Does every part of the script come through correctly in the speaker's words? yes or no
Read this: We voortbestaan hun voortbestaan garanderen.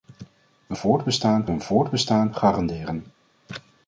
yes